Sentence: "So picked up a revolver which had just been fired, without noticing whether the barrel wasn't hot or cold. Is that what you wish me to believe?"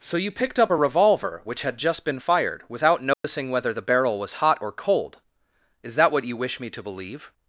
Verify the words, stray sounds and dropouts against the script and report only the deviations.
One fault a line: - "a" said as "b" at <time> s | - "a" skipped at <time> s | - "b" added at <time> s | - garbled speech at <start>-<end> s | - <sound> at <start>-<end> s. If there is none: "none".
- "you" added at 0.2 s
- dropout at 3.1-3.2 s
- "wasn't" said as "was" at 4.2 s